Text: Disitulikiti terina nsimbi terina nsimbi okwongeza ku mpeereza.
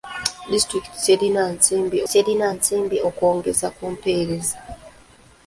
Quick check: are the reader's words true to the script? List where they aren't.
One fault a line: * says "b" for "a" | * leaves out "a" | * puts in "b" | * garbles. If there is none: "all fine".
all fine